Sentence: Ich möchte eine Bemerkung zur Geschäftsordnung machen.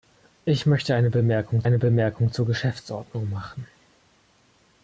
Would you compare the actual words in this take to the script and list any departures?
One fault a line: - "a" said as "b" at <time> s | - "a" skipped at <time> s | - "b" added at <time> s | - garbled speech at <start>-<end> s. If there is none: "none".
- "eine Bemerkung" added at 1.6 s